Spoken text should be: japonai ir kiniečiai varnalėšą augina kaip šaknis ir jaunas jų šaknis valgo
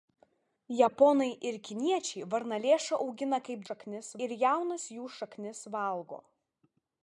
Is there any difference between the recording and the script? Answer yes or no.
no